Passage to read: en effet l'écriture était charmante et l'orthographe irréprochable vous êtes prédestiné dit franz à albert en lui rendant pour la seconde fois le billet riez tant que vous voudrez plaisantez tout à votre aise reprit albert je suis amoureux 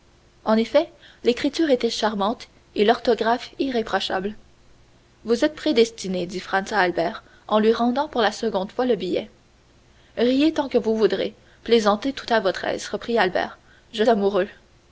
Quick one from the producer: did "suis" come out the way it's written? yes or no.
no